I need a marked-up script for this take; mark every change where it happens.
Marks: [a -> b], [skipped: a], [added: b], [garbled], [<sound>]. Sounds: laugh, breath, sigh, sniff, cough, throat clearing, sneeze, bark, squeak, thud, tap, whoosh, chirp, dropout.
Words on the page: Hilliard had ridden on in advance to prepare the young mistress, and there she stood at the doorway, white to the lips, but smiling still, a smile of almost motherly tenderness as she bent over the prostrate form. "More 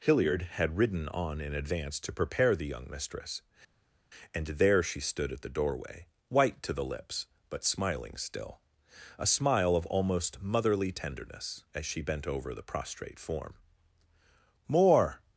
Hilliard had ridden on in advance to prepare the young mistress, and there she stood at the doorway, white to the lips, but smiling still, a smile of almost motherly tenderness as she bent over the prostrate form. "More